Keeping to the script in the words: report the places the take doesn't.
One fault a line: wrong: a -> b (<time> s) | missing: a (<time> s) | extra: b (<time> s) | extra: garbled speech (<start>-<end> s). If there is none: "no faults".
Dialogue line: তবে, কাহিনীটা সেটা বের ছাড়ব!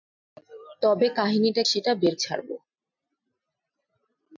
no faults